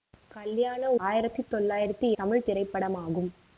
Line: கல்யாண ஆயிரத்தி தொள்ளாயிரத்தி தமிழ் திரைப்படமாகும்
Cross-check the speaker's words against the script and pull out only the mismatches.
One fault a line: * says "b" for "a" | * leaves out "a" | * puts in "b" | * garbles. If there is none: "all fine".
all fine